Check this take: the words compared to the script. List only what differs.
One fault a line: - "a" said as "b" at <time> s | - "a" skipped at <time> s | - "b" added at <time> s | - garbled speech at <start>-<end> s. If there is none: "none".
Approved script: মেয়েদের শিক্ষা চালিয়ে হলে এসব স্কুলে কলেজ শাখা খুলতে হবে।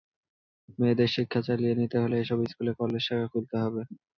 - "নিতে" added at 1.8 s